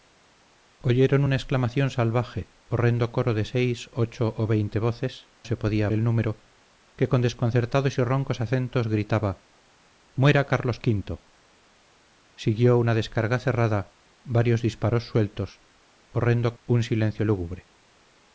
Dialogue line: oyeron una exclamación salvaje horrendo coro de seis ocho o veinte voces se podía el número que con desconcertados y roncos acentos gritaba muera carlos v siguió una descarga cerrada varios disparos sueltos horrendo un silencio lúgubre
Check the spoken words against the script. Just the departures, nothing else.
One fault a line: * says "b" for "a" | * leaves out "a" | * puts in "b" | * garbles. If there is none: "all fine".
all fine